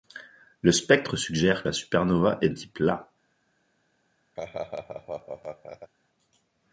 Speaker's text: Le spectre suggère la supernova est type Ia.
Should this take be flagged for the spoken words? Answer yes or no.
no